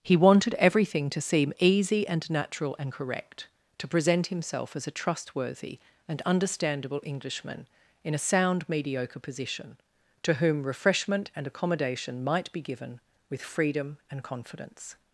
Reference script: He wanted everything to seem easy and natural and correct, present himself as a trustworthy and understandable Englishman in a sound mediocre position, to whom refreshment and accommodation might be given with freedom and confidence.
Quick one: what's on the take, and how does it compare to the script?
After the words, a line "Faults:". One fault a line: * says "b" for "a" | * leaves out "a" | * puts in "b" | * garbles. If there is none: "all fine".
He wanted everything to seem easy and natural and correct, to present himself as a trustworthy and understandable Englishman in a sound mediocre position, to whom refreshment and accommodation might be given with freedom and confidence.
Faults:
* puts in "to"